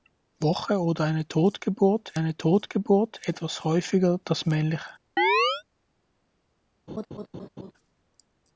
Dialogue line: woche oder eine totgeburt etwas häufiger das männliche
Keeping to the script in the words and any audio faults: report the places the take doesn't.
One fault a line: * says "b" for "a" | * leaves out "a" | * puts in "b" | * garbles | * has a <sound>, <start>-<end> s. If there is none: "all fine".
* puts in "eine totgeburt"
* has a chirp, 5.2-5.6 s
* has a laugh, 6.9-7.7 s